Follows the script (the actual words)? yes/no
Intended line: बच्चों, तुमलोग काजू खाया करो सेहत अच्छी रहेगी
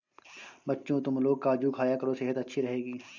yes